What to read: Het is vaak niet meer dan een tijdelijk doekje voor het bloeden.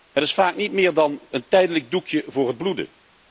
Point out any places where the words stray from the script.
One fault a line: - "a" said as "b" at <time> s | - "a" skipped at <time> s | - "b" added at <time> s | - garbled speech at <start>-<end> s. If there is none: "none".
none